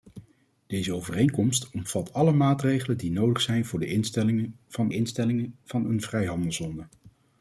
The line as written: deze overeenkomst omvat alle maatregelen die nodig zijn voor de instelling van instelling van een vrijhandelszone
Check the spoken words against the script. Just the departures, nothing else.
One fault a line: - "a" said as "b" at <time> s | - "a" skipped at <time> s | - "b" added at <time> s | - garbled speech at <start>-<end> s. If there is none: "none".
none